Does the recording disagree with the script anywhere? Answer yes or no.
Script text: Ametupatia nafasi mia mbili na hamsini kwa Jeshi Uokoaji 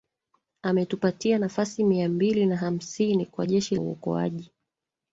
no